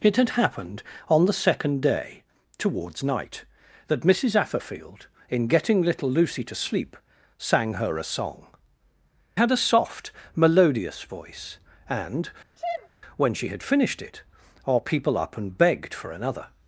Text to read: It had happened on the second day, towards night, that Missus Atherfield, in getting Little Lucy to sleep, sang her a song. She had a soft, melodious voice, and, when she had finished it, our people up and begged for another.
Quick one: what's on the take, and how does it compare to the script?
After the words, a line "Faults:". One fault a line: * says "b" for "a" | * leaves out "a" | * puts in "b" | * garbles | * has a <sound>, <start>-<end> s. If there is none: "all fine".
It had happened on the second day, towards night, that Missus Atherfield, in getting Little Lucy to sleep, sang her a song. Had a soft, melodious voice, and, when she had finished it, our people up and begged for another.
Faults:
* leaves out "She"
* has a sneeze, 12.6-12.9 s